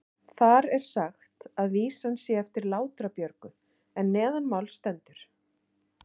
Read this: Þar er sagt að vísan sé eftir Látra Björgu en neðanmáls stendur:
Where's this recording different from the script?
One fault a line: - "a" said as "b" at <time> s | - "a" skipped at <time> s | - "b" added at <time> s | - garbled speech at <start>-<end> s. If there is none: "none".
none